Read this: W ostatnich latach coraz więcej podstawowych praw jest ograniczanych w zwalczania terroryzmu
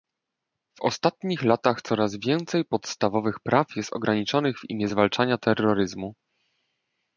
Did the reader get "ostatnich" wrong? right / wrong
right